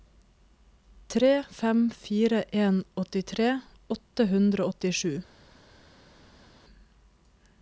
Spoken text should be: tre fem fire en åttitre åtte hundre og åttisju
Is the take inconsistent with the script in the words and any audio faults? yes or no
no